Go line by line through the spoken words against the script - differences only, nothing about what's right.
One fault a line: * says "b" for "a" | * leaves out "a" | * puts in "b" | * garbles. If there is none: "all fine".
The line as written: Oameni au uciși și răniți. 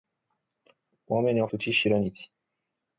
all fine